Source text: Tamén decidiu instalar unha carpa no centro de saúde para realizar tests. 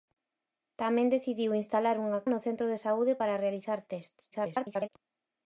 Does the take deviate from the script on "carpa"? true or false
true